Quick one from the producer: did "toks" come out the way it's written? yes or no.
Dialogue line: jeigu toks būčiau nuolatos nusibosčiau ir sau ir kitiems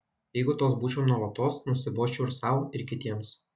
yes